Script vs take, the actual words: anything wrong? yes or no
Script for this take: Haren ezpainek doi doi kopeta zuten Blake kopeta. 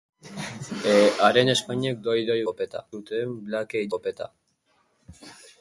no